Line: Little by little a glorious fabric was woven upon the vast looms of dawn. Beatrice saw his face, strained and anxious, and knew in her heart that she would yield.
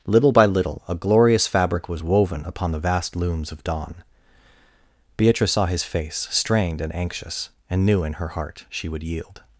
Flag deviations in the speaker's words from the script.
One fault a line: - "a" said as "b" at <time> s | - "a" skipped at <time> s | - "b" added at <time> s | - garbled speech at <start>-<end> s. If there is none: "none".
- "that" skipped at 8.7 s